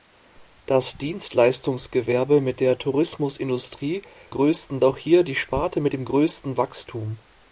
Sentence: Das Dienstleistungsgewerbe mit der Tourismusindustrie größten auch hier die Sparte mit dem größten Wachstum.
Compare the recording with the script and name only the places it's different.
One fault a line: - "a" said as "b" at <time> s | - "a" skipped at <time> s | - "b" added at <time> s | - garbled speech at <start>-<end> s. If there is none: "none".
none